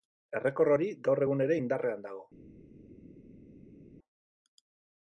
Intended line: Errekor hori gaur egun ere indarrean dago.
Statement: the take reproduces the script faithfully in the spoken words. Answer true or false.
true